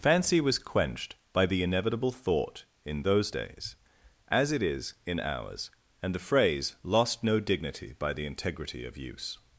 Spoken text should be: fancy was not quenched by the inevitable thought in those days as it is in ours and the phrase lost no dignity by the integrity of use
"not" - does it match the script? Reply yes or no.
no